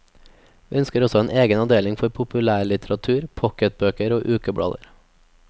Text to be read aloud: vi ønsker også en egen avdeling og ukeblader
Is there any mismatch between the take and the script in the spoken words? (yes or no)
yes